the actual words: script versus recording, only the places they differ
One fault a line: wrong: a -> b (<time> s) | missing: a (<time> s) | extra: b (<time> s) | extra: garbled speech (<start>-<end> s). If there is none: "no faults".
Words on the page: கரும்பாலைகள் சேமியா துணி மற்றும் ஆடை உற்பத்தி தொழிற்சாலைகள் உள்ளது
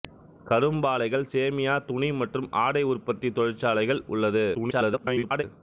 extra: garbled speech (4.5-5.4 s)